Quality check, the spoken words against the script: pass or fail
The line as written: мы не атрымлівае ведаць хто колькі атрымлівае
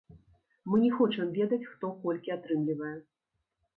fail